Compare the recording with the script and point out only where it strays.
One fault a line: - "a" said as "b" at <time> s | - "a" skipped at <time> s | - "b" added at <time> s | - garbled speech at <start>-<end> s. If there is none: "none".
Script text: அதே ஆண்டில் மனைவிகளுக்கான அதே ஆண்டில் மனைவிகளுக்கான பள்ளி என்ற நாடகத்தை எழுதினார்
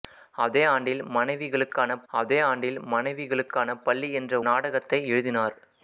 none